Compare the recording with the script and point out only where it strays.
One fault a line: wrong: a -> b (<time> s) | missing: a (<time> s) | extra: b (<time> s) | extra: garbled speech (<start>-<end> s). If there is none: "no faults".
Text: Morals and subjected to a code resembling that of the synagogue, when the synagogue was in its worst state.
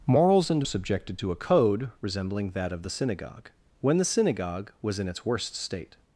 no faults